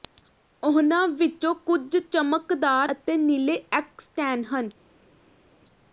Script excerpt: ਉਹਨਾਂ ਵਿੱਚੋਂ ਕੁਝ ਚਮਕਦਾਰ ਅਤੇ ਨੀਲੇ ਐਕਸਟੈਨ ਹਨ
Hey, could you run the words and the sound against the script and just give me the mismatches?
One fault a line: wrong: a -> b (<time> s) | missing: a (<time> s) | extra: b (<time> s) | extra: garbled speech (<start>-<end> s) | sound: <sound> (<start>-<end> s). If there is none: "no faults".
no faults